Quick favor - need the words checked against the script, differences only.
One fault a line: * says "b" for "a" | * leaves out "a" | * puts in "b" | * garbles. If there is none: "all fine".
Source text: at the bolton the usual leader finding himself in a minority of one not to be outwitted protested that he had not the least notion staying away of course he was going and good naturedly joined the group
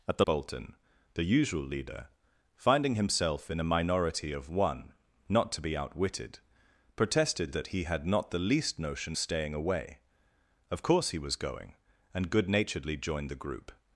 all fine